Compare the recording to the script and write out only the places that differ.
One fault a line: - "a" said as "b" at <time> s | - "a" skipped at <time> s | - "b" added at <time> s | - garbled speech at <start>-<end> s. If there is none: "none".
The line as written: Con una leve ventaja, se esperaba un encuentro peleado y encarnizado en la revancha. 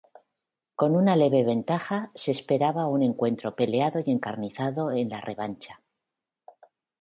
none